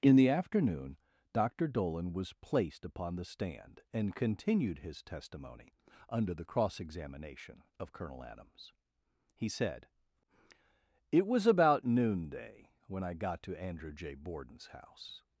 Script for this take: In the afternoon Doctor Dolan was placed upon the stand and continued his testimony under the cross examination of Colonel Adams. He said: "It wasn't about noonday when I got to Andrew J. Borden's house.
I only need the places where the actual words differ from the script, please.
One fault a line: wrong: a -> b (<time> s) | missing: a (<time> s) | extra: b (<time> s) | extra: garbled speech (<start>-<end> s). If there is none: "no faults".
wrong: wasn't -> was (11.3 s)